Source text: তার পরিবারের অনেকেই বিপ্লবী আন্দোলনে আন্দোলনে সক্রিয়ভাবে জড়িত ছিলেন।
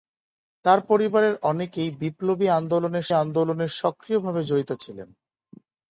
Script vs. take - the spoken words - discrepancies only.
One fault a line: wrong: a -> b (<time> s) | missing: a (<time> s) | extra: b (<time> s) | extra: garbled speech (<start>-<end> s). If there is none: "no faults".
no faults